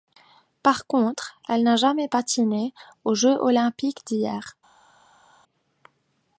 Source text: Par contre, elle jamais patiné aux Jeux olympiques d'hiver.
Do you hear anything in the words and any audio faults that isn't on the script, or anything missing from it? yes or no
yes